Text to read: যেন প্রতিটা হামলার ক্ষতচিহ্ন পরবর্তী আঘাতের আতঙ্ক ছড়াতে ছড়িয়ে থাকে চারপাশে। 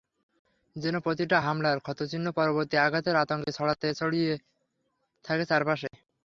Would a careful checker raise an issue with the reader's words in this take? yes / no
no